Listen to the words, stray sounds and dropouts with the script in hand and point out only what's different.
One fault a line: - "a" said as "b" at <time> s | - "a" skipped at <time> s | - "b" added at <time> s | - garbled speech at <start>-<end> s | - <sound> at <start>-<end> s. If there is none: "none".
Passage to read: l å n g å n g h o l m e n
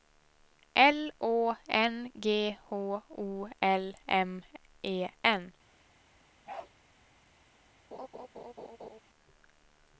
- "å n g" skipped at 2.6 s
- bark at 6.5-6.7 s
- laugh at 7.9-9.0 s